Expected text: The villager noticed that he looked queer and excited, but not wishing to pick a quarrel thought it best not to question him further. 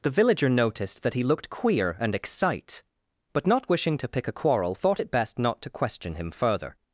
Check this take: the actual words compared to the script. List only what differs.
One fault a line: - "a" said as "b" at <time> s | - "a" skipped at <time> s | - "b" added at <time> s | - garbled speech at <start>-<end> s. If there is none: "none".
- "excited" said as "excite" at 2.1 s